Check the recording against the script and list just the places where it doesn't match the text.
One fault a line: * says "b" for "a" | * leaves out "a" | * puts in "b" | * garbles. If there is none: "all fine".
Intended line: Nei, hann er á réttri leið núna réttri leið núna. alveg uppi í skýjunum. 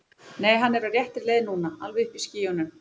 * leaves out "réttri leið núna"